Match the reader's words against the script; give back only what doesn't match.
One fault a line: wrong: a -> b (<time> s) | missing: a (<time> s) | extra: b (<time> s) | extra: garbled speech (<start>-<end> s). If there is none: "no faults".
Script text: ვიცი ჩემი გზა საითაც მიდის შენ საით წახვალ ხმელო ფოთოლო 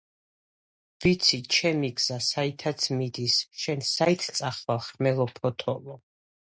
no faults